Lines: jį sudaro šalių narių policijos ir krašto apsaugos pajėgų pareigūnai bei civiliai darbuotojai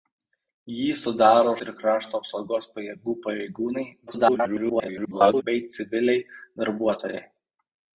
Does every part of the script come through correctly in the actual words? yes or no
no